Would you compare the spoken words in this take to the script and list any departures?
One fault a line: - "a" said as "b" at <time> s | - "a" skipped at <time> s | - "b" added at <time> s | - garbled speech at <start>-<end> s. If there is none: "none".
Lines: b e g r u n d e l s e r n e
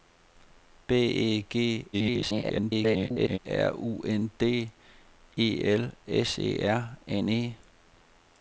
- garbled speech at 1.9-3.4 s